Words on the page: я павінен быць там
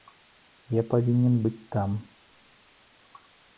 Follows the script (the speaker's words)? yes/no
yes